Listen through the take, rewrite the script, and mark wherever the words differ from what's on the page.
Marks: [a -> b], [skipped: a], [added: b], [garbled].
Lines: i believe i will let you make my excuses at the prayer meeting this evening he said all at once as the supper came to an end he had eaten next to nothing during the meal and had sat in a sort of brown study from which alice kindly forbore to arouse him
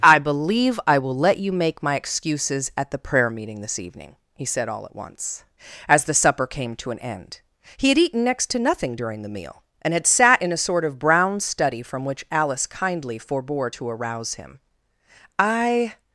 i believe i will let you make my excuses at the prayer meeting this evening he said all at once as the supper came to an end he had eaten next to nothing during the meal and had sat in a sort of brown study from which alice kindly forbore to arouse him [added: i]